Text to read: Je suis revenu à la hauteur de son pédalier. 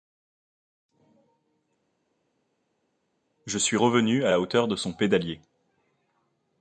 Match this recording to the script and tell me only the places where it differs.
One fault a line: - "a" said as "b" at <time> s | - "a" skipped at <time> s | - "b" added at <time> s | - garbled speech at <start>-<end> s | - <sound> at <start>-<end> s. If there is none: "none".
none